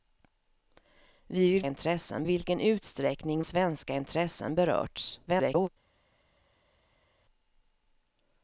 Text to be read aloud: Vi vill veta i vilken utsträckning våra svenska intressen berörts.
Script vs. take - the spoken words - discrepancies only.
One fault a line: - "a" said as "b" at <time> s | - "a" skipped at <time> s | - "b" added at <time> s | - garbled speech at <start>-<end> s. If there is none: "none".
- "veta" said as "intressen" at 1.7 s
- "våra" skipped at 3.4 s
- garbled speech at 5.3-5.7 s